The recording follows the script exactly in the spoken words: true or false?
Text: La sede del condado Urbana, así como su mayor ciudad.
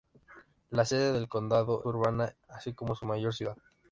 true